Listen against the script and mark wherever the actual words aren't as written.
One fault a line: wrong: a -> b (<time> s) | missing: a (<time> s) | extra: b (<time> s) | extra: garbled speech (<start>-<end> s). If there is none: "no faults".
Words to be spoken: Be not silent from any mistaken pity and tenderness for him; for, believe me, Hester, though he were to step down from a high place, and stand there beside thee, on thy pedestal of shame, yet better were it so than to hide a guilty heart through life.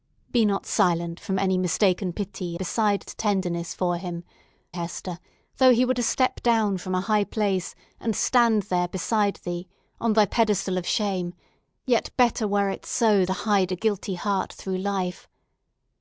wrong: and -> beside (2.5 s)
missing: for believe me (4.2 s)
missing: than (13.2 s)